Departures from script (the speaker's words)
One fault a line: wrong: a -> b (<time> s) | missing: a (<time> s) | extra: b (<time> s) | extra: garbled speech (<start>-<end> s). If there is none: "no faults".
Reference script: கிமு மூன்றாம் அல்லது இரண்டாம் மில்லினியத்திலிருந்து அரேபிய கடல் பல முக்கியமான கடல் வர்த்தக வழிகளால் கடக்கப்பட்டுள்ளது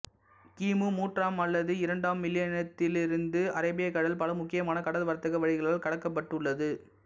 no faults